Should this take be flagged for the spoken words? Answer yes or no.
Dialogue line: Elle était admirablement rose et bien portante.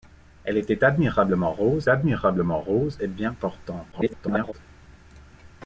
yes